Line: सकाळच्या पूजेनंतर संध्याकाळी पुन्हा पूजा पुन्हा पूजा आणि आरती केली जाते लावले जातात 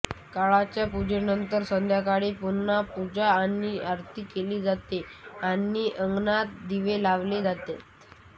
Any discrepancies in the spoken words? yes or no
yes